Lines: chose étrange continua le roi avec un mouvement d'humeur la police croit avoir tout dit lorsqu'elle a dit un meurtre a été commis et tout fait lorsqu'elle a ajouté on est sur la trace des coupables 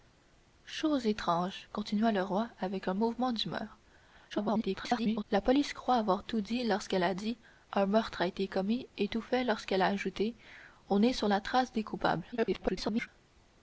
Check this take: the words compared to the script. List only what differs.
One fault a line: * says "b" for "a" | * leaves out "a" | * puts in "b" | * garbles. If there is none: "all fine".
* garbles
* garbles